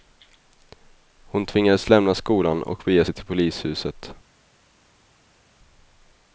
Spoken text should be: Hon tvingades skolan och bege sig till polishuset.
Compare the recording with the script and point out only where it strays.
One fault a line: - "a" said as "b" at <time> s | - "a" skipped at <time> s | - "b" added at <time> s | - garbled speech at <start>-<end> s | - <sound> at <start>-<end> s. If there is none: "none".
- "lämna" added at 1.9 s